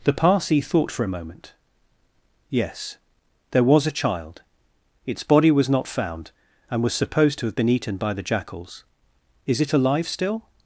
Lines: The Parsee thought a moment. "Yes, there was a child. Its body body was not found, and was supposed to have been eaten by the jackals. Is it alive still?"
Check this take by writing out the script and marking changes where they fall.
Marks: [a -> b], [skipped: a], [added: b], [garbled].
The Parsee thought [added: for] a moment. "Yes, there was a child. Its body [skipped: body] was not found, and was supposed to have been eaten by the jackals. Is it alive still?"